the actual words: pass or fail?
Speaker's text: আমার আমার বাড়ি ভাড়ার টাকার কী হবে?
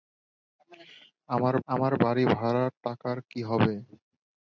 pass